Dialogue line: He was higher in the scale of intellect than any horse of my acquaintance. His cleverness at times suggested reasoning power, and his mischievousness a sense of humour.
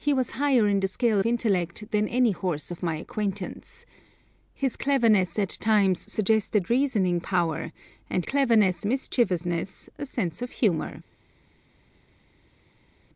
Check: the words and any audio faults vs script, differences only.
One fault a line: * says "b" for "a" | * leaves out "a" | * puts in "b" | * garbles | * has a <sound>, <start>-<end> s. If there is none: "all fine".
* leaves out "of"
* says "cleverness" for "his"